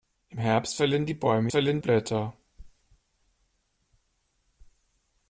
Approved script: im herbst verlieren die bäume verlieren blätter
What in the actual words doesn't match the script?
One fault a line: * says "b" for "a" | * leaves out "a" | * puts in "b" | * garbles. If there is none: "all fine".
all fine